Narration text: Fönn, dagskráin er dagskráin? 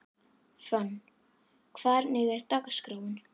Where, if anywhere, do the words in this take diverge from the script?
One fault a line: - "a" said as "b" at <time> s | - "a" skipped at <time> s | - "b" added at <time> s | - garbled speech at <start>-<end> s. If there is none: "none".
- "dagskráin" said as "hvernig" at 1.8 s